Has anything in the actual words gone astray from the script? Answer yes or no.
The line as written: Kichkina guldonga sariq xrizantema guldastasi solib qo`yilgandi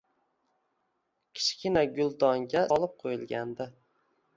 yes